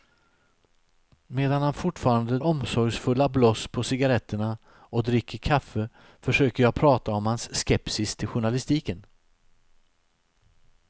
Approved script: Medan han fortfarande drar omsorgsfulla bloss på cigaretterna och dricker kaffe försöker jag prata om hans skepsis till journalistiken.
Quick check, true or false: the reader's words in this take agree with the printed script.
false